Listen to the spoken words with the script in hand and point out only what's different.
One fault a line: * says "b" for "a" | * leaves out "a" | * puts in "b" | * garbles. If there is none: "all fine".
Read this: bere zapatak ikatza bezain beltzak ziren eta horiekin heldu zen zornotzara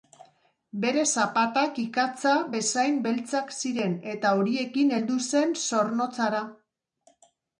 all fine